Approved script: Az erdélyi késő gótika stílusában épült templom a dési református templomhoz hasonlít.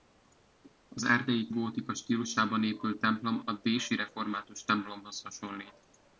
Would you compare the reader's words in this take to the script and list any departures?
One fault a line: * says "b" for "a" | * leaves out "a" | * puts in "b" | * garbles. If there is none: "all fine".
* leaves out "késő"